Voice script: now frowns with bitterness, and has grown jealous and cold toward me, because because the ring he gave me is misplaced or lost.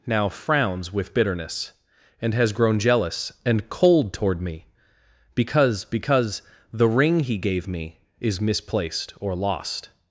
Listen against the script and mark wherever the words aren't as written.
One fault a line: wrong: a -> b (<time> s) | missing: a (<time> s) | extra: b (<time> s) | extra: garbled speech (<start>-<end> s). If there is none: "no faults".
no faults